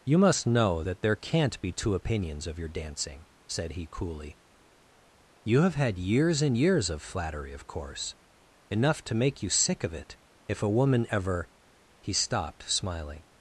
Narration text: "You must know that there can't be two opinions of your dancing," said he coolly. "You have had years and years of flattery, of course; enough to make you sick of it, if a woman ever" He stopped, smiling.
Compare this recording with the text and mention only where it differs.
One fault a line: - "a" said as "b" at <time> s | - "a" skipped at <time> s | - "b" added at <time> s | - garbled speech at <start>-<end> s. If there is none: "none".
none